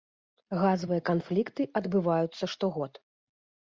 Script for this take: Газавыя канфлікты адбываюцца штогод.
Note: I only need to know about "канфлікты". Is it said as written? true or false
true